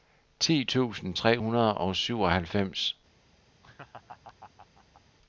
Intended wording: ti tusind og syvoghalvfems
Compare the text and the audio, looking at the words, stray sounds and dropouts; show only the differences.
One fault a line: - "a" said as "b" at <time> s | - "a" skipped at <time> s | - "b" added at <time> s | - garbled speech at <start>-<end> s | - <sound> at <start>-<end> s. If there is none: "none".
- "tre hundrede" added at 1.1 s
- laugh at 3.6-5.0 s